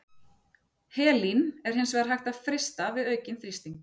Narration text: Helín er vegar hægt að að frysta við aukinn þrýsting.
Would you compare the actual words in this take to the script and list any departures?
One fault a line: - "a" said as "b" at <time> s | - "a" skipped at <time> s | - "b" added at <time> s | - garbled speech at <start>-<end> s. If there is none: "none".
- "hins" added at 1.8 s
- "að" skipped at 2.4 s